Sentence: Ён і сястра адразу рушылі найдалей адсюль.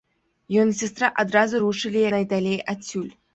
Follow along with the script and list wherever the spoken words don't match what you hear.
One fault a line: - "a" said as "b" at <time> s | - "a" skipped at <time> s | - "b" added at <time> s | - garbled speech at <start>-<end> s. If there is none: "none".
none